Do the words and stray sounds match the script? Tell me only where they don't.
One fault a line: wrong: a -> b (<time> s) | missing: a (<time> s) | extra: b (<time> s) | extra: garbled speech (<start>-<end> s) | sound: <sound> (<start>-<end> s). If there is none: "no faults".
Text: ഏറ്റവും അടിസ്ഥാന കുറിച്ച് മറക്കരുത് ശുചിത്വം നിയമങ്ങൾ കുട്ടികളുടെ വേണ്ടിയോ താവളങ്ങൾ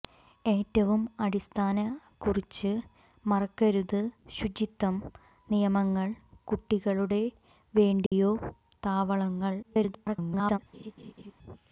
sound: dropout (8.1-8.1 s)
extra: garbled speech (9.6-10.6 s)
sound: laugh (10.7-11.3 s)